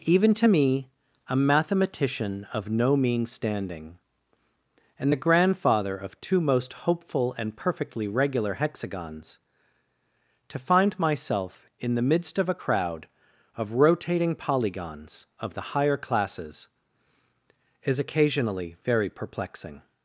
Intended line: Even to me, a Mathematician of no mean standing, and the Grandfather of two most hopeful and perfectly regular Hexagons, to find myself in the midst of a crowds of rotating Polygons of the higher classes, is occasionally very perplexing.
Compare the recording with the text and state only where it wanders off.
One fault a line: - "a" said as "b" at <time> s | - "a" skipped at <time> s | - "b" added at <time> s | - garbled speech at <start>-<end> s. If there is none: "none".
- "crowds" said as "crowd" at 12.6 s